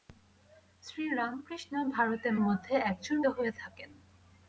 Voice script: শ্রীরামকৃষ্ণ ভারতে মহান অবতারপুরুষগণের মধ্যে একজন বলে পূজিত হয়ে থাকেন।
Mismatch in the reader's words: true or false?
true